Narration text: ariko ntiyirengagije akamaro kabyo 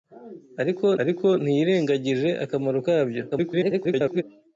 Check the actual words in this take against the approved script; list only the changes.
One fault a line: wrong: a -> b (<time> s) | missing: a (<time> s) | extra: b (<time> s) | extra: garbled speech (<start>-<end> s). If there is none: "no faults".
extra: ariko (1.0 s)
extra: garbled speech (3.3-4.2 s)